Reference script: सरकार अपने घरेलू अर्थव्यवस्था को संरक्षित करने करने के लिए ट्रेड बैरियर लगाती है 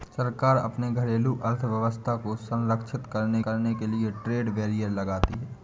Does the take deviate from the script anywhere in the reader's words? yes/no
no